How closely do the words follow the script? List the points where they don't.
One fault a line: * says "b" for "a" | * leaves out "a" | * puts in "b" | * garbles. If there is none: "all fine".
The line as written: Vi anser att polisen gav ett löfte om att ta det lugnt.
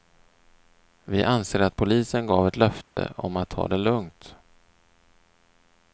all fine